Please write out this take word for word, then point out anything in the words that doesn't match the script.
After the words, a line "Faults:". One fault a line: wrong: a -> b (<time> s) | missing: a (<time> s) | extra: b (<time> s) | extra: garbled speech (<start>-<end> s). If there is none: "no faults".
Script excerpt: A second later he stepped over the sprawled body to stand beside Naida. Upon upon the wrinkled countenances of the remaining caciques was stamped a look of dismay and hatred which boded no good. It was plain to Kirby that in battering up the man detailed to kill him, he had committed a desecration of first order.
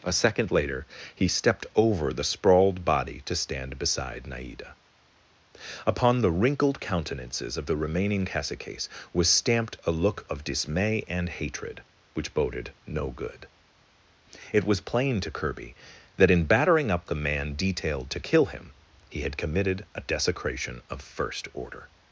A second later he stepped over the sprawled body to stand beside Naida. Upon the wrinkled countenances of the remaining caciques was stamped a look of dismay and hatred which boded no good. It was plain to Kirby that in battering up the man detailed to kill him, he had committed a desecration of first order.
Faults:
missing: upon (6.2 s)